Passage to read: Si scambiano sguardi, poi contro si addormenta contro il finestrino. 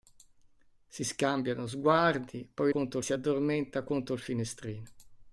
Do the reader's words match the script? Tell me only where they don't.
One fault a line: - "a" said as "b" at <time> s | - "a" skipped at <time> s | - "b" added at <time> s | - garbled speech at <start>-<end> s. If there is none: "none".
none